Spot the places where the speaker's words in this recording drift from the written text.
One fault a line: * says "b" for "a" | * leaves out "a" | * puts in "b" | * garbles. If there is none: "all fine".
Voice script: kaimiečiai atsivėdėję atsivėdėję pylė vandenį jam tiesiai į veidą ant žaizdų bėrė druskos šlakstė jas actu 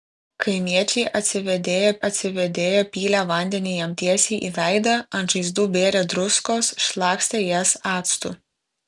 all fine